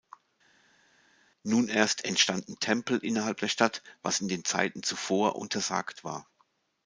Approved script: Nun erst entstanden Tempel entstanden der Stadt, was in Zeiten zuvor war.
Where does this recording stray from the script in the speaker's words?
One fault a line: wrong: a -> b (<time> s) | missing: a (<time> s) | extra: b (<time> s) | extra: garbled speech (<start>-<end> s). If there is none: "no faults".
wrong: entstanden -> innerhalb (3.0 s)
extra: den (4.3 s)
extra: untersagt (5.4 s)